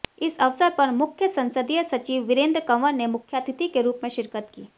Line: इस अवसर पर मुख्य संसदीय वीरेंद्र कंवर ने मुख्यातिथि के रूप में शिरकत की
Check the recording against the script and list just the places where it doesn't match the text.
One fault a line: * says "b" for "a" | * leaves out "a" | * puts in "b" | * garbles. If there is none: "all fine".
* puts in "सचिव"